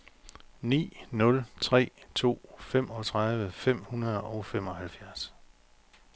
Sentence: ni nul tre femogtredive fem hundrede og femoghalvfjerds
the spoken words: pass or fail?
fail